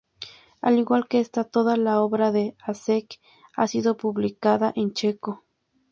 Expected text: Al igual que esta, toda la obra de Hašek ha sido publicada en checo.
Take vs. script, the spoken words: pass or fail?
pass